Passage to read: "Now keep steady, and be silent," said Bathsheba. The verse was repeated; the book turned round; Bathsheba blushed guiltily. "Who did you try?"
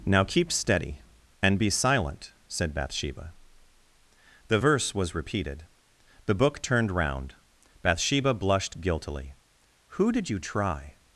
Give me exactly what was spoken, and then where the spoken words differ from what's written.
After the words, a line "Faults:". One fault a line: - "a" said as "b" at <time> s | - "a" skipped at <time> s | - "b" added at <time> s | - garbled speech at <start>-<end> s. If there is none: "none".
"Now keep steady, and be silent," said Bathsheba. The verse was repeated; the book turned round; Bathsheba blushed guiltily. "Who did you try?"
Faults:
none